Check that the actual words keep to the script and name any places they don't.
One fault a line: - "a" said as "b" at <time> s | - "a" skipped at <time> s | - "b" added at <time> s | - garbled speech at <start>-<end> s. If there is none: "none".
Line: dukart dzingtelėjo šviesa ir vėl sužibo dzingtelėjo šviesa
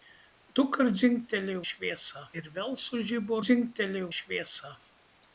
none